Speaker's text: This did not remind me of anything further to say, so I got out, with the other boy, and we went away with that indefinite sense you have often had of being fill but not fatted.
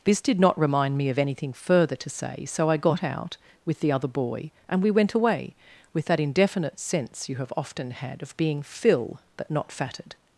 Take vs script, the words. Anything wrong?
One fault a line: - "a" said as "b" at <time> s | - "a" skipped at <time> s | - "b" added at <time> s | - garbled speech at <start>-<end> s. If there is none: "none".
none